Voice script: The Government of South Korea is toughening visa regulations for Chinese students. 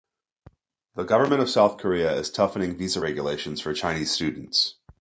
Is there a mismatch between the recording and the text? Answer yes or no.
no